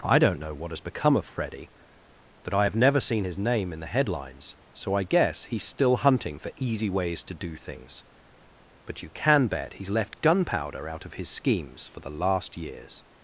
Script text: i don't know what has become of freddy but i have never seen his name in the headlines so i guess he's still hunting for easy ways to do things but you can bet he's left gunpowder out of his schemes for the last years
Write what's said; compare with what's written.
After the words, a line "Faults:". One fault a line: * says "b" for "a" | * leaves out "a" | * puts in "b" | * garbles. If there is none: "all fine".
i don't know what has become of freddy but i have never seen his name in the headlines so i guess he's still hunting for easy ways to do things but you can bet he's left gunpowder out of his schemes for the last years
Faults:
all fine